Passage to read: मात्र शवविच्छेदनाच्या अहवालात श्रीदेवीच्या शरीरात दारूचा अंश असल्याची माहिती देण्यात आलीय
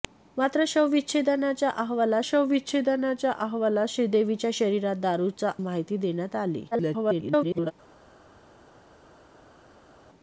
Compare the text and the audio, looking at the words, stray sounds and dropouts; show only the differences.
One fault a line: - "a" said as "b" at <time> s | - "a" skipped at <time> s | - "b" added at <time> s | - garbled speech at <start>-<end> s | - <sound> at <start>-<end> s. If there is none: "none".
- "शवविच्छेदनाच्या अहवालात" added at 2.2 s
- "अंश असल्याची" skipped at 5.5 s
- garbled speech at 6.7-7.7 s